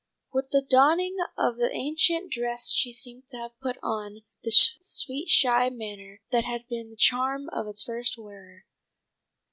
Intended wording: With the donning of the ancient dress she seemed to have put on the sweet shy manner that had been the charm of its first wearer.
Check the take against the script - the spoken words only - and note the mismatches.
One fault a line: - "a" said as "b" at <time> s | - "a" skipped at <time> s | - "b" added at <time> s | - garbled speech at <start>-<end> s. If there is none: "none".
none